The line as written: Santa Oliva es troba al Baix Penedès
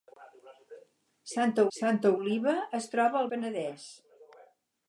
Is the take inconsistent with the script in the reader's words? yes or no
yes